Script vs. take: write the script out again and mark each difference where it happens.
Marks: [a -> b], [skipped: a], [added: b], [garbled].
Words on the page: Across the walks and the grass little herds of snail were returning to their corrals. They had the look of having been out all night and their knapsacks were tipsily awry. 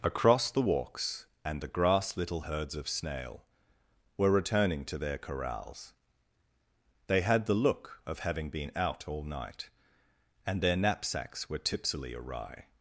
Across the walks and the grass little herds of snail were returning to their corrals. They had the look of having been out all night and their knapsacks were tipsily awry.